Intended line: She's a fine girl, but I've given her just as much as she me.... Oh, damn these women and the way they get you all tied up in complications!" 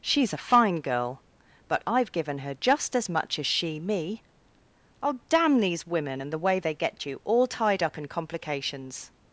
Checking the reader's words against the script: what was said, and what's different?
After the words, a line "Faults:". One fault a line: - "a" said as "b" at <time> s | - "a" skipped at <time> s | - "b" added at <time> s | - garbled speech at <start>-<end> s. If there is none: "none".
She's a fine girl, but I've given her just as much as she me.... Oh, damn these women and the way they get you all tied up in complications!"
Faults:
none